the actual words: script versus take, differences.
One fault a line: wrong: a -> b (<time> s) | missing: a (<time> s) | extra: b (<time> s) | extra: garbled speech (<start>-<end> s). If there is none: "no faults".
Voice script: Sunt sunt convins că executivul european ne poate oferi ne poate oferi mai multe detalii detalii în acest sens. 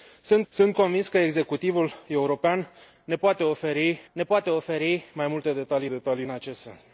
no faults